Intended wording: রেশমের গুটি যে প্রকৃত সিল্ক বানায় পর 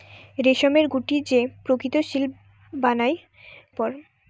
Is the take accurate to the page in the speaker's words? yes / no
yes